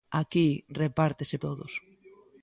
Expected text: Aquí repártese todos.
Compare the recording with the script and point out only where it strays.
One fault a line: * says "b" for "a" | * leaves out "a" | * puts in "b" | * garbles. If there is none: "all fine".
all fine